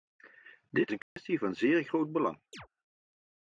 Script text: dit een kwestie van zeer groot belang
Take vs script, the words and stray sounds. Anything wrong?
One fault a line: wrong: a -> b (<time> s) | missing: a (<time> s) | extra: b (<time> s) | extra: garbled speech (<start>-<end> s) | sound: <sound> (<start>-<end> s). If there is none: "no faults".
sound: dropout (1.0-1.2 s)
sound: chirp (2.5-2.7 s)